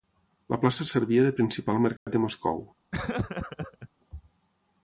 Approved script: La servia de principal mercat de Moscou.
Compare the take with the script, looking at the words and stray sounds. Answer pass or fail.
fail